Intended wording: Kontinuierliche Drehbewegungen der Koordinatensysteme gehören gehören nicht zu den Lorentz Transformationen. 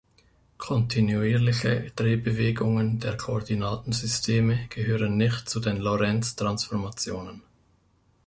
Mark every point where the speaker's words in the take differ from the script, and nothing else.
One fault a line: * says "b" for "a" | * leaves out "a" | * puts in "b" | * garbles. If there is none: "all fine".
* leaves out "gehören"